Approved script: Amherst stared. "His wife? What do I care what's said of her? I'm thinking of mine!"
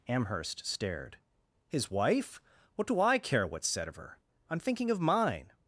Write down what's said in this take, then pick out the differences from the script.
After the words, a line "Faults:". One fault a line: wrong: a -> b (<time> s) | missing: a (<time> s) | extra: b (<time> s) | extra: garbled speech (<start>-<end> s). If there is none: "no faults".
Amherst stared. "His wife? What do I care what's said of her? I'm thinking of mine!"
Faults:
no faults